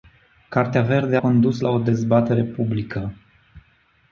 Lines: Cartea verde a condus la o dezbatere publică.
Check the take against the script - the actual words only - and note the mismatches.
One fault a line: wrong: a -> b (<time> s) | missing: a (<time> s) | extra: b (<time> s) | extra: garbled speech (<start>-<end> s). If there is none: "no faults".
missing: a (1.2 s)